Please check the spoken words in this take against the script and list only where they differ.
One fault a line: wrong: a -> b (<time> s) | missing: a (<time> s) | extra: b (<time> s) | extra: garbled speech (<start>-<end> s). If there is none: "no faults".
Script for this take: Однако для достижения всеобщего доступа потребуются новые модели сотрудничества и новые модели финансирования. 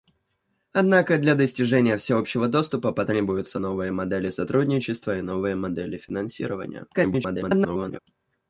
extra: garbled speech (6.9-8.0 s)